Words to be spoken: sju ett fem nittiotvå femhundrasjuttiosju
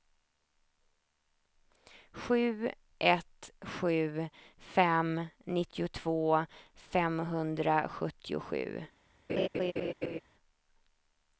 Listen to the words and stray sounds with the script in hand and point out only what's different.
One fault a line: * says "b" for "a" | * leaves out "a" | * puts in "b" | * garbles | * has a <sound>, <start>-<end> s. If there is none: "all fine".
* puts in "sju"
* has a laugh, 9.3-10.2 s